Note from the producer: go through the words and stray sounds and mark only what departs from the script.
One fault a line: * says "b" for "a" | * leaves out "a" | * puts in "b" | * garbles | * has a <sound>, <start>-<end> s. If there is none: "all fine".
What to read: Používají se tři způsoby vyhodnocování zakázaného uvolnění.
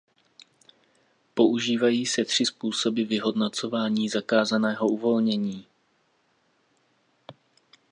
all fine